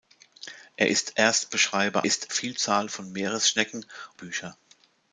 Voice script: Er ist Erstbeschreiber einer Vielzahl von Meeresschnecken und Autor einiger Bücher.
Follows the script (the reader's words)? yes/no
no